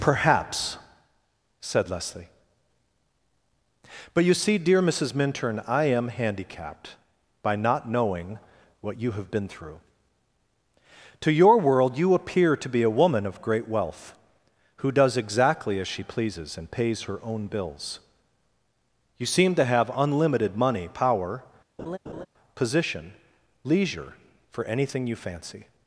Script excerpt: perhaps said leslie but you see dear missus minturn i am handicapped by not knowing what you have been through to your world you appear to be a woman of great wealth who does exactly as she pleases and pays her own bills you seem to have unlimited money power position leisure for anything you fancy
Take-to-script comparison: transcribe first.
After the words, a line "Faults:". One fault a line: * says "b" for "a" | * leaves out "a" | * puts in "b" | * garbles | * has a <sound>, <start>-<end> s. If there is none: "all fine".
perhaps said leslie but you see dear missus minturn i am handicapped by not knowing what you have been through to your world you appear to be a woman of great wealth who does exactly as she pleases and pays her own bills you seem to have unlimited money power position leisure for anything you fancy
Faults:
* has a laugh, 21.8-22.3 s